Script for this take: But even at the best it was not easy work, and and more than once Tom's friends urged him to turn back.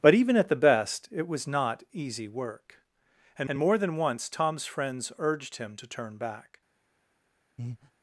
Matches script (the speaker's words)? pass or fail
pass